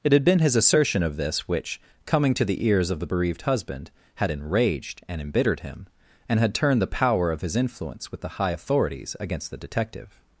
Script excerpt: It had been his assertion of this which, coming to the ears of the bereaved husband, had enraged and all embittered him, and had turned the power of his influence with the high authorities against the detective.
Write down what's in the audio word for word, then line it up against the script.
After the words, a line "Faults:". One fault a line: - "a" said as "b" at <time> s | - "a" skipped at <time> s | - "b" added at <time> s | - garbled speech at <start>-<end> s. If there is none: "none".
It had been his assertion of this which, coming to the ears of the bereaved husband, had enraged and embittered him, and had turned the power of his influence with the high authorities against the detective.
Faults:
- "all" skipped at 5.2 s